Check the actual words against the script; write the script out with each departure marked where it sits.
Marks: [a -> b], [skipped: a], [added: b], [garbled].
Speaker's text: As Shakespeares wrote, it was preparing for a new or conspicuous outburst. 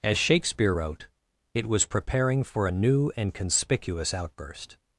As [Shakespeares -> Shakespeare] wrote, it was preparing for a new [or -> and] conspicuous outburst.